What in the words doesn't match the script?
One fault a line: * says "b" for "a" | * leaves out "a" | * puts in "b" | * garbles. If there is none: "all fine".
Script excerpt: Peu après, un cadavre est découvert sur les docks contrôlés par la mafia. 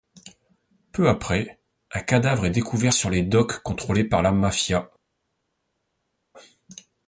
all fine